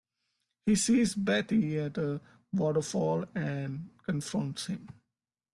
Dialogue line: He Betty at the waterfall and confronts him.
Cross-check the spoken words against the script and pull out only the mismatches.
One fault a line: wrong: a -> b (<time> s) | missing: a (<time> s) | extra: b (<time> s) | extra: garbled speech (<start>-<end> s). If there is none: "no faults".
extra: sees (0.7 s)
wrong: the -> a (2.0 s)